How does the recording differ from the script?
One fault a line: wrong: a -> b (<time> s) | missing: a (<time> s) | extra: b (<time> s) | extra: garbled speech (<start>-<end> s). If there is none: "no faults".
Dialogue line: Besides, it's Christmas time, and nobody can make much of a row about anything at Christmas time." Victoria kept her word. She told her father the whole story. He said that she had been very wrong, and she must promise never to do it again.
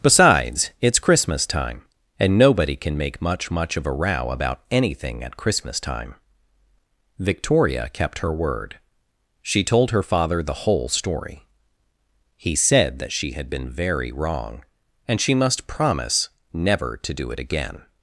extra: much (3.5 s)